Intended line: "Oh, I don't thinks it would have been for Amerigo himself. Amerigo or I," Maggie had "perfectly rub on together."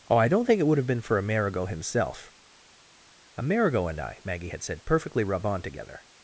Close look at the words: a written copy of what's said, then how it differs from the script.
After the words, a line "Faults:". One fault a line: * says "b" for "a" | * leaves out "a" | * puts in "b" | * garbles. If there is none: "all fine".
"Oh, I don't think it would have been for Amerigo himself. Amerigo and I," Maggie had said, "perfectly rub on together."
Faults:
* says "think" for "thinks"
* says "and" for "or"
* puts in "said"